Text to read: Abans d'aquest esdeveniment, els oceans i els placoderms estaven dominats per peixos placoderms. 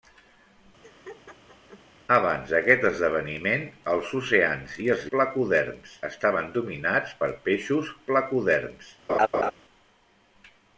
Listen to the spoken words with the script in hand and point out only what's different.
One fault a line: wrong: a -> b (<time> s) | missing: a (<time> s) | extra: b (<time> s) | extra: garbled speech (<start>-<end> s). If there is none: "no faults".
no faults